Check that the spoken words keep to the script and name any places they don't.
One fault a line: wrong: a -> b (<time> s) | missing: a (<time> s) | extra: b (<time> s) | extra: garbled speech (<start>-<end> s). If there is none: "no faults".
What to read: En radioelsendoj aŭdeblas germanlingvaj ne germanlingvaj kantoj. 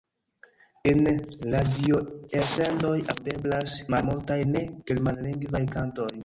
wrong: germanlingvaj -> malmultaj (4.0 s)